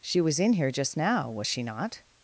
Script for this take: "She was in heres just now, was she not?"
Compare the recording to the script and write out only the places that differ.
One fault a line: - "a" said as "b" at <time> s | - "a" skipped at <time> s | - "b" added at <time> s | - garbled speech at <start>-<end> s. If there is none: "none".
- "heres" said as "here" at 0.5 s